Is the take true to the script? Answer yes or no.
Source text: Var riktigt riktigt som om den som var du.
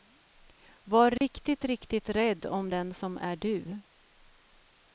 no